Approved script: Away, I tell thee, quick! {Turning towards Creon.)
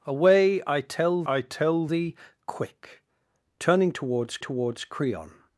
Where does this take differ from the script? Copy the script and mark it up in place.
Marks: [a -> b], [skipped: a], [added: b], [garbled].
Away, I tell [added: I tell] thee, quick! {Turning towards [added: towards] Creon.)